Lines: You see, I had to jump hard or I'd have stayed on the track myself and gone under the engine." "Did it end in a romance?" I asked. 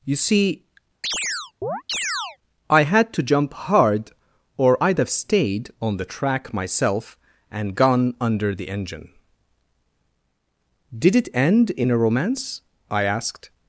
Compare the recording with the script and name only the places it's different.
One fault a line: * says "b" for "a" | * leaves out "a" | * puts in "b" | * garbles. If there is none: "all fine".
all fine